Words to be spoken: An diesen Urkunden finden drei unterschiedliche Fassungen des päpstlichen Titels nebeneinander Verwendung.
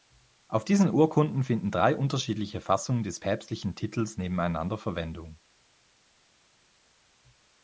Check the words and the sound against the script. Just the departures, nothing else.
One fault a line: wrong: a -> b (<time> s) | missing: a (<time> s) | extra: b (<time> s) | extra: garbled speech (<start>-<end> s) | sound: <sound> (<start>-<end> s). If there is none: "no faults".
wrong: An -> Auf (0.5 s)